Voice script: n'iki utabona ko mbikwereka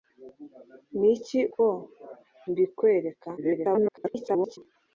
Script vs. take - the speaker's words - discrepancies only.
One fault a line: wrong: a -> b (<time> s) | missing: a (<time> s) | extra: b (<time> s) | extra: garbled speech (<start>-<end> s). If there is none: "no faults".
missing: utabona (1.4 s)
extra: garbled speech (3.4-4.6 s)